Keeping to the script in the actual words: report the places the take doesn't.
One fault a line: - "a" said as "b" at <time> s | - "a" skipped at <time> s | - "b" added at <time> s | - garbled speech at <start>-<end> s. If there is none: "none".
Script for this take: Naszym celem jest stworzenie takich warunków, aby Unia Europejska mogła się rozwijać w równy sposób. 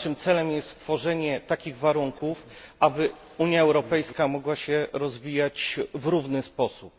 none